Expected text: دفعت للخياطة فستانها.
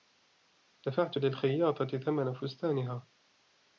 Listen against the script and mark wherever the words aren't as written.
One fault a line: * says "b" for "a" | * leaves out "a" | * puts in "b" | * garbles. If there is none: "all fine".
* puts in "ثمن"